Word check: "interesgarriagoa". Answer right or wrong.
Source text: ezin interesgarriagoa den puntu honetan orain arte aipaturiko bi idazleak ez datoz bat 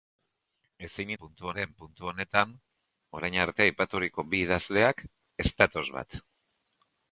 wrong